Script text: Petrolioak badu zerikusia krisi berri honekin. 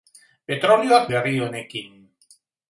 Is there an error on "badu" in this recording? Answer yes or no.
yes